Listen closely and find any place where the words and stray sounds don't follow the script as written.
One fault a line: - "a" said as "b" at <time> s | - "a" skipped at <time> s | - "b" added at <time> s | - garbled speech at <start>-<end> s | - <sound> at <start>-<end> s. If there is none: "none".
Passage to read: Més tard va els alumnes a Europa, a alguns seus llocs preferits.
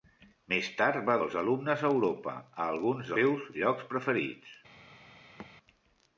- thud at 5.4-5.5 s